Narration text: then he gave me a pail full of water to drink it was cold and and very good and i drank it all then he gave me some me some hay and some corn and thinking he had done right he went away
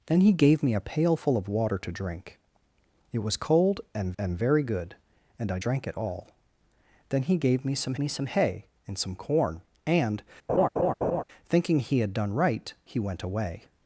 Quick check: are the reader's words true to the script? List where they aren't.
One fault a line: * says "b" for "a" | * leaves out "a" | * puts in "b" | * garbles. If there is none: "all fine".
all fine